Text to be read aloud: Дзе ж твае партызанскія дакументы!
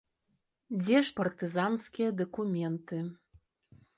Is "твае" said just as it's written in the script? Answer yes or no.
no